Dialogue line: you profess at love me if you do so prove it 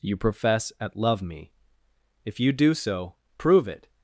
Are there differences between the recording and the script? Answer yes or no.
no